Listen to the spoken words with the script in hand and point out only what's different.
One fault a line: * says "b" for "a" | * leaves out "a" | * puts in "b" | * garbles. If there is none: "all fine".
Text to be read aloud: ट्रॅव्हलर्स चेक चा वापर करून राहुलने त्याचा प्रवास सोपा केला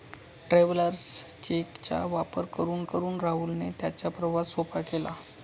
* puts in "करून"